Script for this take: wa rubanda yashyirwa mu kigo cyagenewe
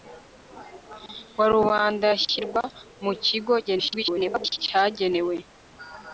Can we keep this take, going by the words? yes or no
no